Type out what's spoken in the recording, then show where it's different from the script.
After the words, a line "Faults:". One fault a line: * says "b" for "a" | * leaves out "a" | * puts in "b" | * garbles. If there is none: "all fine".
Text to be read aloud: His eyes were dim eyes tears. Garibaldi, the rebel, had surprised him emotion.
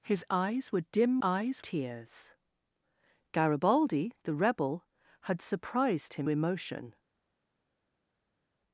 His eyes were dim eyes tears. Garibaldi, the rebel, had surprised him emotion.
Faults:
all fine